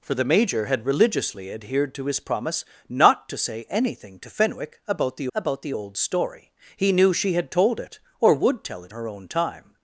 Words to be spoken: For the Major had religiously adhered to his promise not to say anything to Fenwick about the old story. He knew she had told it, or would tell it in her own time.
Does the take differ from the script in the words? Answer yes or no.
yes